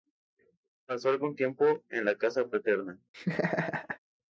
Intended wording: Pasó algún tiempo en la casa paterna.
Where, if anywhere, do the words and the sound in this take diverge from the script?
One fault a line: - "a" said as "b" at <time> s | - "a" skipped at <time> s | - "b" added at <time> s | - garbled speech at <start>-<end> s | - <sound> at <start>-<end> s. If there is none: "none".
- laugh at 3.1-4.0 s